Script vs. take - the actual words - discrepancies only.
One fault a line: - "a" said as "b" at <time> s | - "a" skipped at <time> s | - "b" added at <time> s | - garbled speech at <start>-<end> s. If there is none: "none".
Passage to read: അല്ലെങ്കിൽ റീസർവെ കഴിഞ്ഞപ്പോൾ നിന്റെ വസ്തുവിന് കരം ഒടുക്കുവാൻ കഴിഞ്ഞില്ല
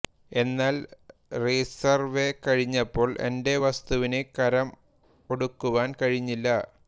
- "അല്ലെങ്കിൽ" said as "എന്നാൽ" at 0.3 s
- "നിന്റെ" said as "എന്റെ" at 3.3 s